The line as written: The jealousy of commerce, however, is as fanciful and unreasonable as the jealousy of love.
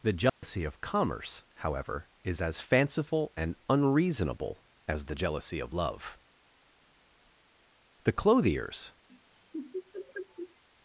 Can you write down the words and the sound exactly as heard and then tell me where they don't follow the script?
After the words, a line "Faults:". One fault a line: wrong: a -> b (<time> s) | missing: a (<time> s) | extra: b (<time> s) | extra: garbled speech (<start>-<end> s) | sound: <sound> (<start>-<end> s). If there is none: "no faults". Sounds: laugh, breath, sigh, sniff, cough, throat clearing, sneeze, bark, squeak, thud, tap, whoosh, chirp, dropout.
The jealousy of commerce, however, is as fanciful and unreasonable as the jealousy of love. The clothiers
Faults:
sound: dropout (0.3-0.4 s)
extra: The clothiers (8.0 s)
sound: laugh (9.1-10.6 s)